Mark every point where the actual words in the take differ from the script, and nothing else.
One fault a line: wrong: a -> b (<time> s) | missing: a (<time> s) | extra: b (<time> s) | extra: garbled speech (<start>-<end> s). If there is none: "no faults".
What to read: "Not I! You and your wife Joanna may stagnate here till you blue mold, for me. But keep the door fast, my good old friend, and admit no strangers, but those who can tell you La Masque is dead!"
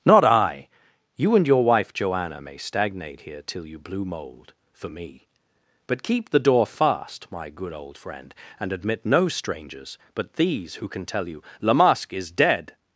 wrong: those -> these (10.3 s)